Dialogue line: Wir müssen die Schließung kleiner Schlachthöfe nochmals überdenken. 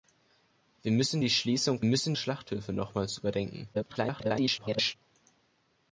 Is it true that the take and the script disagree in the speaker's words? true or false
true